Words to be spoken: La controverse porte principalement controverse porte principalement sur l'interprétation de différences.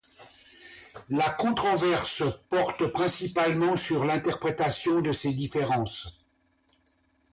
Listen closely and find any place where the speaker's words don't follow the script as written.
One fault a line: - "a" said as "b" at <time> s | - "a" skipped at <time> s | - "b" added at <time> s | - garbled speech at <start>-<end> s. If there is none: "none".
- "controverse porte principalement" skipped at 3.8 s
- "ces" added at 5.1 s